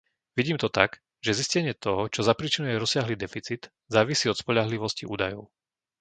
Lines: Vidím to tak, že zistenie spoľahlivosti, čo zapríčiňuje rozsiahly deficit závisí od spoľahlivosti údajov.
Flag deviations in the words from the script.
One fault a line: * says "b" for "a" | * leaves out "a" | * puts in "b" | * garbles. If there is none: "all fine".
* says "toho" for "spoľahlivosti"